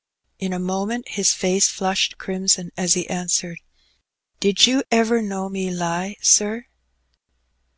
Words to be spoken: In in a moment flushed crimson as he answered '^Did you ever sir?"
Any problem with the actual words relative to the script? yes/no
yes